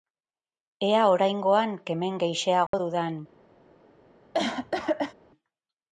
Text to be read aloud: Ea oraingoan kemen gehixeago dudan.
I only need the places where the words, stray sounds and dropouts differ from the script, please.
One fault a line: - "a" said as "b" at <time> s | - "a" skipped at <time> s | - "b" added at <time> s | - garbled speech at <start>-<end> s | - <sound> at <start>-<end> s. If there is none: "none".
- dropout at 2.7-2.7 s
- cough at 4.3-5.1 s